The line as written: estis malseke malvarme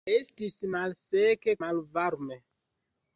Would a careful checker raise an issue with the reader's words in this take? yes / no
no